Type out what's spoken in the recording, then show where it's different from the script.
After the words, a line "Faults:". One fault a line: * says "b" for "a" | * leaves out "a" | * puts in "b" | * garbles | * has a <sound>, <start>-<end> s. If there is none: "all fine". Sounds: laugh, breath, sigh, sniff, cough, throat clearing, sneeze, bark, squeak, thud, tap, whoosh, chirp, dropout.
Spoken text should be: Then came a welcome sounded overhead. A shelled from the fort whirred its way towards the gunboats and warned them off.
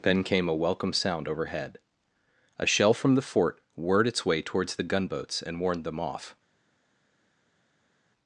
Then came a welcome sound overhead. A shell from the fort whirred its way towards the gunboats and warned them off.
Faults:
* says "sound" for "sounded"
* says "shell" for "shelled"